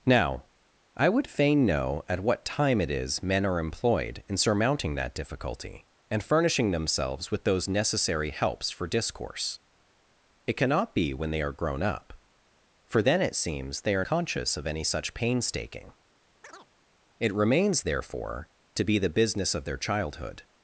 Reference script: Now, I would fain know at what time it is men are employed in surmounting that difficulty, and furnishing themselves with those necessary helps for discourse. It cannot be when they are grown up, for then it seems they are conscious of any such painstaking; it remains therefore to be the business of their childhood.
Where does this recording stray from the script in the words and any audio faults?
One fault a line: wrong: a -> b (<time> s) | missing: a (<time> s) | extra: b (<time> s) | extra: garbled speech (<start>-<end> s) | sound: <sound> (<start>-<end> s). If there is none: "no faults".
sound: chirp (16.4-16.7 s)